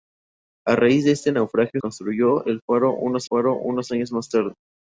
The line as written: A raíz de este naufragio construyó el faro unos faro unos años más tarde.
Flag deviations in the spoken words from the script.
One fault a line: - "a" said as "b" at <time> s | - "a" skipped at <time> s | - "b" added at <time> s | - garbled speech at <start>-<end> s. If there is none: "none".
none